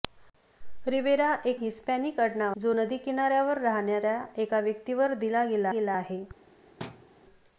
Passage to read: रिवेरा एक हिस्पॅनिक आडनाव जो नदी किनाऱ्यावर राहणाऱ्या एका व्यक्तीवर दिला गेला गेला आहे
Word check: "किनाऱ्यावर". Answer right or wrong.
right